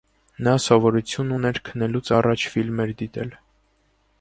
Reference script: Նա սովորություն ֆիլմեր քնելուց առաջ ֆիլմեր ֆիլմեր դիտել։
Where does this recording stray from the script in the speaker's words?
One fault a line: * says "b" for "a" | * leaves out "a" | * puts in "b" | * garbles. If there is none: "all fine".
* says "ուներ" for "ֆիլմեր"
* leaves out "ֆիլմեր"